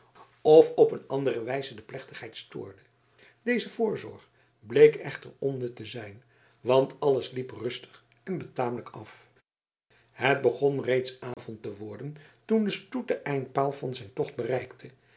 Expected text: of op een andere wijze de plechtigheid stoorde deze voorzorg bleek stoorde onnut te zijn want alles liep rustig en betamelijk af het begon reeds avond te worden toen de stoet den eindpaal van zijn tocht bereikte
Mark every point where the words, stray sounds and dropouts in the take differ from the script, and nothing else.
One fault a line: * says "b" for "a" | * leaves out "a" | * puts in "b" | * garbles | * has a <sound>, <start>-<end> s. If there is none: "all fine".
* says "echter" for "stoorde"
* has a dropout, 11.3-11.4 s